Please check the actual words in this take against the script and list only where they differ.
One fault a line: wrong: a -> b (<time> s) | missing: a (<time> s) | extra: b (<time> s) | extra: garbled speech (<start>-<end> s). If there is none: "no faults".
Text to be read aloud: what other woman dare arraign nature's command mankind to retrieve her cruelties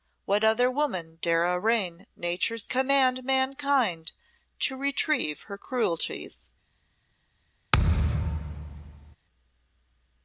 no faults